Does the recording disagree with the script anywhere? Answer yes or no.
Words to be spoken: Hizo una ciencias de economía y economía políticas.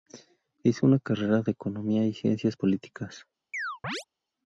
yes